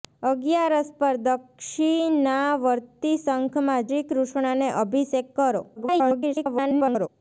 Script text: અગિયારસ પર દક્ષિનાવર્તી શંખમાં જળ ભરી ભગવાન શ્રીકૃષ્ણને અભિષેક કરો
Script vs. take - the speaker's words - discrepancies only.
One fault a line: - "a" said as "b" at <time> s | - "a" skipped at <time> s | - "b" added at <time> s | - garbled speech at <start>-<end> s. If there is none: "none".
- "જળ ભરી ભગવાન" skipped at 3.9 s
- garbled speech at 5.8-7.1 s